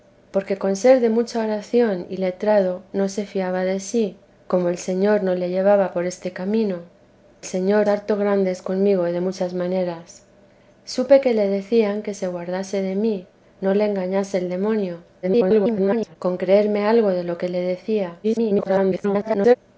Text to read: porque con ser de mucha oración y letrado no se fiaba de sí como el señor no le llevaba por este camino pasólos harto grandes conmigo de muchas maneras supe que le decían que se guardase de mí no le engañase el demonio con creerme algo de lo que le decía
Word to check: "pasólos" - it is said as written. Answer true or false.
false